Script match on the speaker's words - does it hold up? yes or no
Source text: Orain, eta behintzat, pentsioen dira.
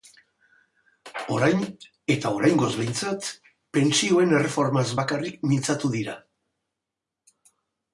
no